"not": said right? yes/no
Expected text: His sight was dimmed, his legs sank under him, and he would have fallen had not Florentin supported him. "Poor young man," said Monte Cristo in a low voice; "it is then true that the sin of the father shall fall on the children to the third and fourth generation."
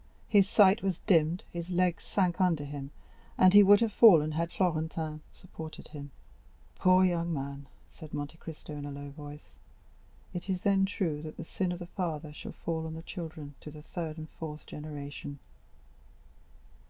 no